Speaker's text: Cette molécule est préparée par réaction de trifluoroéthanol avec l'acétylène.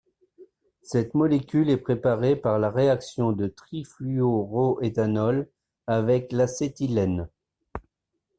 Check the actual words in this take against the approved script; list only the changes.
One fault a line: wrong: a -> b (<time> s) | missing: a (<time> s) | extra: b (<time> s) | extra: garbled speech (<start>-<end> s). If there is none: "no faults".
extra: la (2.6 s)